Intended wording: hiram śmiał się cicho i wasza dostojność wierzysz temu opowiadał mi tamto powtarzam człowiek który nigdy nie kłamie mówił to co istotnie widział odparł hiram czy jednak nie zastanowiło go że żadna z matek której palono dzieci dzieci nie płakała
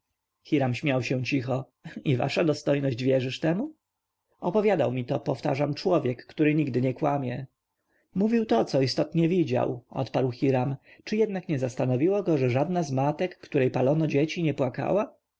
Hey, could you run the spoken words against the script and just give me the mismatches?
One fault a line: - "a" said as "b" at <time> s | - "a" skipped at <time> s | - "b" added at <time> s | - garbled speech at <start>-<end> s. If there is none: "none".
- "tamto" said as "to" at 5.0 s
- "dzieci" skipped at 14.4 s